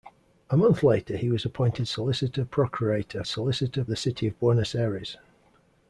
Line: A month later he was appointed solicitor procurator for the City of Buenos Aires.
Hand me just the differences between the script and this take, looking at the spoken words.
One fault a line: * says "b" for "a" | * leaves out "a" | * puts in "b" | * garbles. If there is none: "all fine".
* says "solicitor" for "for"